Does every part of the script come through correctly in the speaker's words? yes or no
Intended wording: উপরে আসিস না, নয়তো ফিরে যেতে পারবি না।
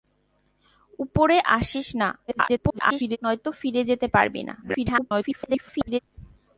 no